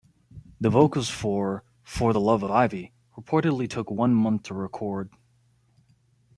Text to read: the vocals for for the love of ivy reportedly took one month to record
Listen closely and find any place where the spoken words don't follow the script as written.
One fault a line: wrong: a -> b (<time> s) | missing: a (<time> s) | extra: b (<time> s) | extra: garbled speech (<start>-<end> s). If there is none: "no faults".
missing: of (2.4 s)